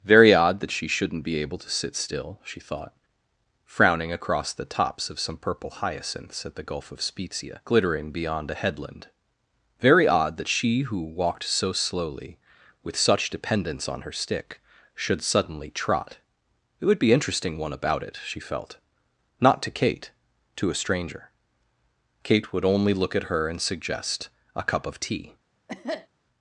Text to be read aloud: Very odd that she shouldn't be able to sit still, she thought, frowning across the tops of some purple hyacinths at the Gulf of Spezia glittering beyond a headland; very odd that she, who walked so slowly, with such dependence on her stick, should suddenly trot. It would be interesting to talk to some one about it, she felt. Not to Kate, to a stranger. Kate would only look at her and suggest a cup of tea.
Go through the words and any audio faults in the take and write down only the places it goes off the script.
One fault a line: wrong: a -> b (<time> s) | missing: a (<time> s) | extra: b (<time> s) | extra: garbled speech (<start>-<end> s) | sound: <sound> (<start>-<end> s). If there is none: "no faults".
missing: to talk to some (17.6 s)
sound: cough (25.7-26.1 s)